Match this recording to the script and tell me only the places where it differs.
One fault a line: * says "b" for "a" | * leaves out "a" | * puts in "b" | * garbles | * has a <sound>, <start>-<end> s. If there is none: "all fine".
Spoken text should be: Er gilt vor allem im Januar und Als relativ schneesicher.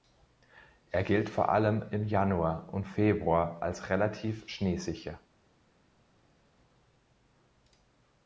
* puts in "Februar"